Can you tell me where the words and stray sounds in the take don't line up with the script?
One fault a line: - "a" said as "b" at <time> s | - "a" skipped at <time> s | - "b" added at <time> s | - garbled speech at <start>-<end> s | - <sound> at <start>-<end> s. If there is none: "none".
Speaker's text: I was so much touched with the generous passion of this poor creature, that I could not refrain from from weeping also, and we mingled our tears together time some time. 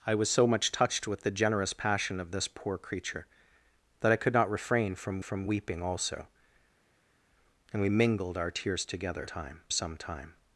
none